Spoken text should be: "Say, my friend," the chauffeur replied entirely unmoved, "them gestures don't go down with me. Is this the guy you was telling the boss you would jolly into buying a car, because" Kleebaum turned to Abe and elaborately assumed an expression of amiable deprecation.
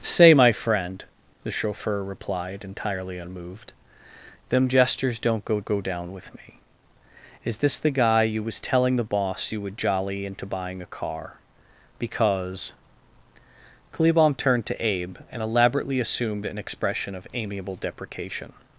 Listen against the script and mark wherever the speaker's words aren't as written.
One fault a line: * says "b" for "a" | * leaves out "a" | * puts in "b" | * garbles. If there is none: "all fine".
* puts in "go"